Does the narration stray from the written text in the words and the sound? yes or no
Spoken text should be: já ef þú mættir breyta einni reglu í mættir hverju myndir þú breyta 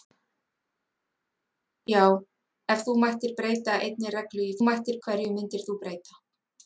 no